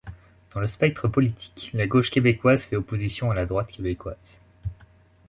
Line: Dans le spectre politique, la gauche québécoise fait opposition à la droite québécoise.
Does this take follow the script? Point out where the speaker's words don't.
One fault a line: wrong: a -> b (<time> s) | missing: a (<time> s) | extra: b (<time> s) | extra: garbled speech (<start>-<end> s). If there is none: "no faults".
no faults